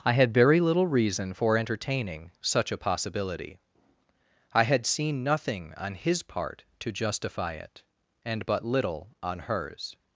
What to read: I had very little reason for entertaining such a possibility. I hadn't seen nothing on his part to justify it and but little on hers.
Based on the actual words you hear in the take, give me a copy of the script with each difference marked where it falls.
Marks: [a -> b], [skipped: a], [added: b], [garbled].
I had very little reason for entertaining such a possibility. I [hadn't -> had] seen nothing on his part to justify it and but little on hers.